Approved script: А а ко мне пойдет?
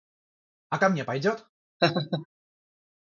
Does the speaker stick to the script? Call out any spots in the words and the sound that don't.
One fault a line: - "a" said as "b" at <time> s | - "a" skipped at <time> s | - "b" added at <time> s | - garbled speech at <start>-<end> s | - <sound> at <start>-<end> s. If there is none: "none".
- "а" skipped at 0.8 s
- laugh at 1.8-2.3 s